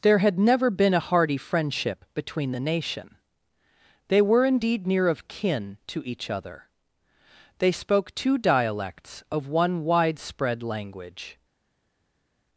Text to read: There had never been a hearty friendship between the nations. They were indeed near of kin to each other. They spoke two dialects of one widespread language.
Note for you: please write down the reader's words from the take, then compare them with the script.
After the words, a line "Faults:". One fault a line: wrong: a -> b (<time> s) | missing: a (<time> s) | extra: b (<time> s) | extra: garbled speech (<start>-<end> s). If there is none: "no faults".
There had never been a hearty friendship between the nation. They were indeed near of kin to each other. They spoke two dialects of one widespread language.
Faults:
wrong: nations -> nation (2.6 s)